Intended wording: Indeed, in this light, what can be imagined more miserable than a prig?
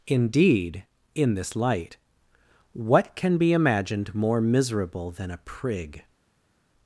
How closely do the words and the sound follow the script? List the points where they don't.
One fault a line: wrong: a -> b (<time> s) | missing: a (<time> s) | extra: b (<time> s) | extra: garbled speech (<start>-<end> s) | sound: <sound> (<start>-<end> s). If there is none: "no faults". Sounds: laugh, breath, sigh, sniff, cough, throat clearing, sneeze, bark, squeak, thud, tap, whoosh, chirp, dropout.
no faults